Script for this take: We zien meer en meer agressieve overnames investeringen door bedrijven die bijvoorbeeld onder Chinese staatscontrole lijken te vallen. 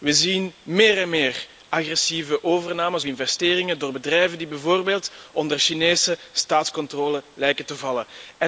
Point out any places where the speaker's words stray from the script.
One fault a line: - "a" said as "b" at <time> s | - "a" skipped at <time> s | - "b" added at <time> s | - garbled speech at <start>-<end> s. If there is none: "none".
none